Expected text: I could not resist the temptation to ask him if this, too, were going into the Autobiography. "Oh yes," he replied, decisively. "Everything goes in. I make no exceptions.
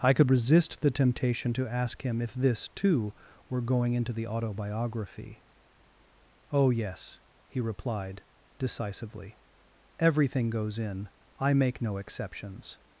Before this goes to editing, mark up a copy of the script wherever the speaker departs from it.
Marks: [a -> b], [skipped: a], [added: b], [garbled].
I could [skipped: not] resist the temptation to ask him if this, too, were going into the Autobiography. "Oh yes," he replied, decisively. "Everything goes in. I make no exceptions.